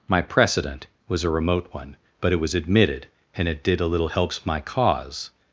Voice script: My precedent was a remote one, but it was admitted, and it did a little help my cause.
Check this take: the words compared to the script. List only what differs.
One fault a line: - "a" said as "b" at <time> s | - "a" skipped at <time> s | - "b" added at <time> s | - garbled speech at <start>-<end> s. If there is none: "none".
- "help" said as "helps" at 4.0 s